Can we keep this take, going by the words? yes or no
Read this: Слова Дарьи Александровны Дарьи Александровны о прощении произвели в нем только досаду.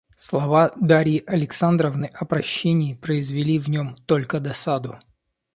no